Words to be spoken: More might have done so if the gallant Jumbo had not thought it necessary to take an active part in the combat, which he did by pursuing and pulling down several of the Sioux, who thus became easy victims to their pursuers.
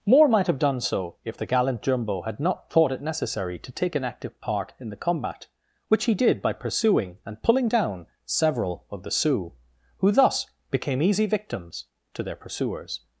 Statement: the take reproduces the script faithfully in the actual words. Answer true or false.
true